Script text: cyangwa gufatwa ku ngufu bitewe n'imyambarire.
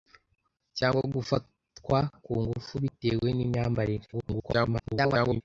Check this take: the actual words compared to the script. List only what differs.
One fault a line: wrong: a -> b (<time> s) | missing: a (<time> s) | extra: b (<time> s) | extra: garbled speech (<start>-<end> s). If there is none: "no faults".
extra: garbled speech (4.1-5.4 s)